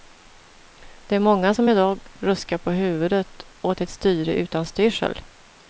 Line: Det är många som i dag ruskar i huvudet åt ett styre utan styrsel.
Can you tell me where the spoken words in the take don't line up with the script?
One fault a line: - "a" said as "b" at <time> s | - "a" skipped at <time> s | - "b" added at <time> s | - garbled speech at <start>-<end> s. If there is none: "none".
- "i" said as "på" at 2.6 s